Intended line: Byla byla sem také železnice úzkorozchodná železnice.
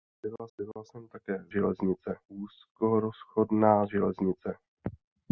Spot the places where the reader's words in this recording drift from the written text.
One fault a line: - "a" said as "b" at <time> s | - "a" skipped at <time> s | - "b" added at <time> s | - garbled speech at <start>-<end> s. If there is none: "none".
none